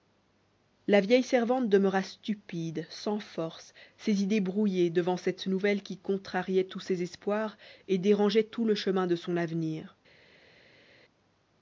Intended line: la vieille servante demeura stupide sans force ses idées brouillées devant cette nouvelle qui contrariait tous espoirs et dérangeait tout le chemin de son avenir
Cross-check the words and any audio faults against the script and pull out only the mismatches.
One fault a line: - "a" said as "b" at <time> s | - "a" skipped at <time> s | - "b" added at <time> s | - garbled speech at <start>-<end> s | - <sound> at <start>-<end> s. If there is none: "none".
- "ses" added at 6.8 s